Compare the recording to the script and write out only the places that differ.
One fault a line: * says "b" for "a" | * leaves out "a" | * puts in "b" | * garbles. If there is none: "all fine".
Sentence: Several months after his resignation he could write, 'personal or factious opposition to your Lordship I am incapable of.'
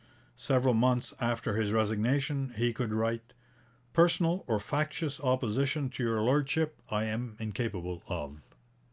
all fine